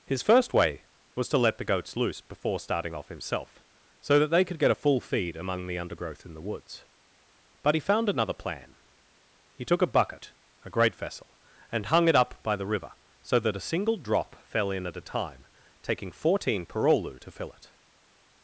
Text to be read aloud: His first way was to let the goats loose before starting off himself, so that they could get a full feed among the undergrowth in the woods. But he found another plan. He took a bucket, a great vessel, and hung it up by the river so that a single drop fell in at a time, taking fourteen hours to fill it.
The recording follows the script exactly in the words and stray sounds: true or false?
false